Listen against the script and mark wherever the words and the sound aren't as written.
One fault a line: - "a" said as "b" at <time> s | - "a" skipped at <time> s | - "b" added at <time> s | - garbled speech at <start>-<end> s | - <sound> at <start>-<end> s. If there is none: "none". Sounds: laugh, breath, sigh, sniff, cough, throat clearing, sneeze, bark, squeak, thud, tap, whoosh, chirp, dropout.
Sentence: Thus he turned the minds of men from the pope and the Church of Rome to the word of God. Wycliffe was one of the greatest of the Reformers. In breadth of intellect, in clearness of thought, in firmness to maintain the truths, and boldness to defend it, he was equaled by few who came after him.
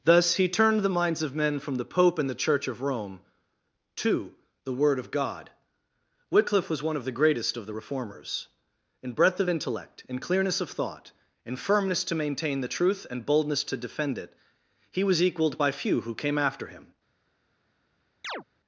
- "truths" said as "truth" at 12.7 s
- chirp at 18.2-18.4 s